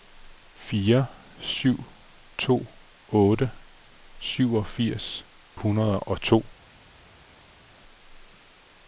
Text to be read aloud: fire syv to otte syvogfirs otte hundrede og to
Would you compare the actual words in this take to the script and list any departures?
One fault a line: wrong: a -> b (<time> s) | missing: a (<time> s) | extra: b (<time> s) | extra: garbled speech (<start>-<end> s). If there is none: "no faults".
missing: otte (5.2 s)